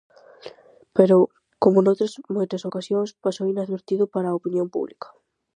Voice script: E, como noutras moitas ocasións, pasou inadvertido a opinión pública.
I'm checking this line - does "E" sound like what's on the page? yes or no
no